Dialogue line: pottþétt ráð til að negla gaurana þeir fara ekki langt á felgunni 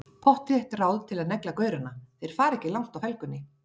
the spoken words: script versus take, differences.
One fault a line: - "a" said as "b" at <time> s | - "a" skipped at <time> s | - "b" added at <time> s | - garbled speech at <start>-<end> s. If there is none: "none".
none